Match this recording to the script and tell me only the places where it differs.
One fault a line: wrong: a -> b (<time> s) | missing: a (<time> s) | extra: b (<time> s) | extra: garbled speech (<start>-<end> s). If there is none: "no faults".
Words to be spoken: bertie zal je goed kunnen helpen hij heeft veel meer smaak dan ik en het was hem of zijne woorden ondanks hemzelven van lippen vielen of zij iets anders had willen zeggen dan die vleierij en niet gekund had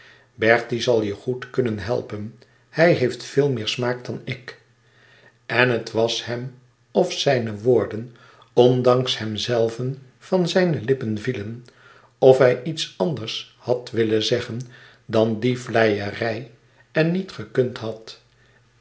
extra: zijne (10.5 s)
wrong: zij -> hij (12.4 s)